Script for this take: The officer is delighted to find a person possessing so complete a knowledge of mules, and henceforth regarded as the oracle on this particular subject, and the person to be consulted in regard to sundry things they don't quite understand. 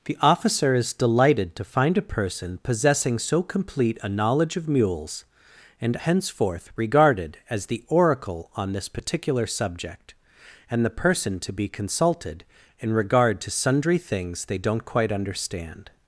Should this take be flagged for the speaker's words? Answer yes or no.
no